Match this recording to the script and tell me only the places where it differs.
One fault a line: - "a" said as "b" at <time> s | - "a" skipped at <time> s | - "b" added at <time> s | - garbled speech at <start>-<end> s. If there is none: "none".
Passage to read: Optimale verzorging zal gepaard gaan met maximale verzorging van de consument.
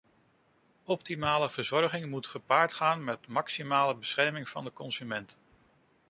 - "zal" said as "moet" at 2.1 s
- "verzorging" said as "bescherming" at 4.0 s